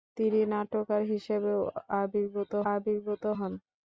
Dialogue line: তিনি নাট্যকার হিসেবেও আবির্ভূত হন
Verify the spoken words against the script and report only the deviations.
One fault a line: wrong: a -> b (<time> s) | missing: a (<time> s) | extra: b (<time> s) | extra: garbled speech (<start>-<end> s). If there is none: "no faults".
extra: আবির্ভূত (2.7 s)